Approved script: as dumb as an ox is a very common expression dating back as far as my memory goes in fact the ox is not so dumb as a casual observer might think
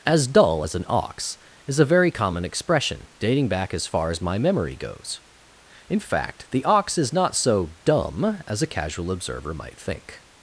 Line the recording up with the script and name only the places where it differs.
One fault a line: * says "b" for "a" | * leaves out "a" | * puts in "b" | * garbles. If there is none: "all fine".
* says "dull" for "dumb"